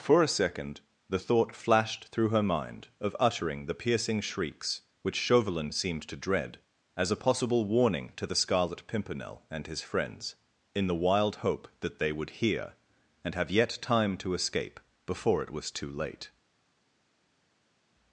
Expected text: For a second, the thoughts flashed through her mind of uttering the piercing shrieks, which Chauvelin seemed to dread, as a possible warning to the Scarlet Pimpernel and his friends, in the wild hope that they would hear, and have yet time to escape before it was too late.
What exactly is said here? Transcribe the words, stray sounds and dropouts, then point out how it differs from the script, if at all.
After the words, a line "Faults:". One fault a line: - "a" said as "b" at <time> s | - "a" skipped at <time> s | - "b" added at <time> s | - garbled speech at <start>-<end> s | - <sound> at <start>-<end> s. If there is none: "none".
For a second, the thought flashed through her mind of uttering the piercing shrieks, which Chauvelin seemed to dread, as a possible warning to the Scarlet Pimpernel and his friends, in the wild hope that they would hear, and have yet time to escape before it was too late.
Faults:
- "thoughts" said as "thought" at 1.2 s